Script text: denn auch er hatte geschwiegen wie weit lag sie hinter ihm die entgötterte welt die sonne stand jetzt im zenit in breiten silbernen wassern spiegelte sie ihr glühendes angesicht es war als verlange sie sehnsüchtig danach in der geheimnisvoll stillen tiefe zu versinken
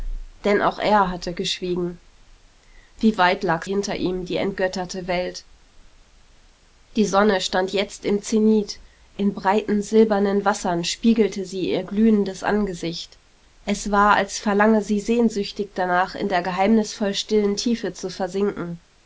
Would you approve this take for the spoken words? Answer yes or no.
no